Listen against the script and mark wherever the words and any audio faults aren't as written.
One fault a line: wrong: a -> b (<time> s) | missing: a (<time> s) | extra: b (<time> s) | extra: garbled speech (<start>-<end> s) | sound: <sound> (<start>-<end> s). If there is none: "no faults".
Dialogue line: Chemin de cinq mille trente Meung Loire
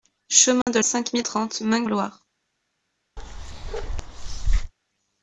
sound: dropout (0.6-0.7 s)
sound: bark (3.2-4.7 s)